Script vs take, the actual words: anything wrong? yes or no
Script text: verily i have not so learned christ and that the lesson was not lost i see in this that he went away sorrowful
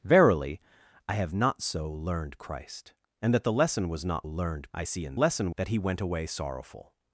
yes